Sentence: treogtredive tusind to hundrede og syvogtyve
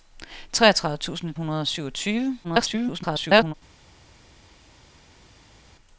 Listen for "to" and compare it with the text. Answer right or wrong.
wrong